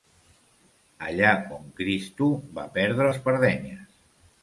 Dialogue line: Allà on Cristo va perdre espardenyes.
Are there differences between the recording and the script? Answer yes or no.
no